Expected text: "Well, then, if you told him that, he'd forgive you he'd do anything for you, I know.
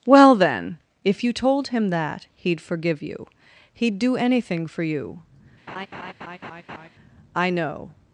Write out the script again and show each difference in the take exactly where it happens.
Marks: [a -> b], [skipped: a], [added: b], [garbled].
"Well, then, if you told him that, he'd forgive you he'd do anything for you, I know.